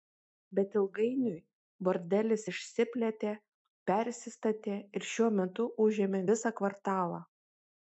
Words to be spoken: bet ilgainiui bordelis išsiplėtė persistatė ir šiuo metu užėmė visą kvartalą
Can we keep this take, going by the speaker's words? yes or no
yes